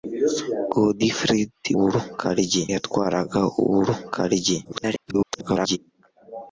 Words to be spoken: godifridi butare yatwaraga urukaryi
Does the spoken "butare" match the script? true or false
false